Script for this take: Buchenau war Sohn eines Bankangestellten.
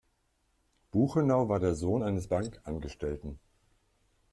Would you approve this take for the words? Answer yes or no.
no